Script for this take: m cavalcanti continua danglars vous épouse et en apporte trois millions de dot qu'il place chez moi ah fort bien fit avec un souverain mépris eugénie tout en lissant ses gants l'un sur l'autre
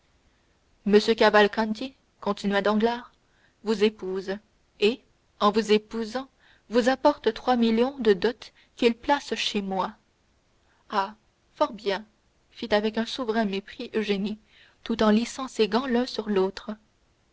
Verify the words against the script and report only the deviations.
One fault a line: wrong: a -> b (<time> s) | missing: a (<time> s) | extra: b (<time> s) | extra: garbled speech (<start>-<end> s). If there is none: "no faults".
extra: vous épousant vous (5.5 s)